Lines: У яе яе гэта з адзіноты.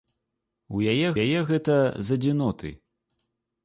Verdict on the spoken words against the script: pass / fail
pass